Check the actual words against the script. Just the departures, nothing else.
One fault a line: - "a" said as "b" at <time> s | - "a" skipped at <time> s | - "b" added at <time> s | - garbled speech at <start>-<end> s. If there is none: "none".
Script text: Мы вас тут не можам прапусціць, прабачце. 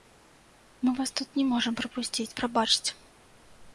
none